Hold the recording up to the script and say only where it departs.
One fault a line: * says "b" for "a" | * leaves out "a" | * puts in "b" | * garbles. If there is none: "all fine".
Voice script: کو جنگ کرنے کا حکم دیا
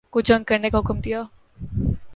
all fine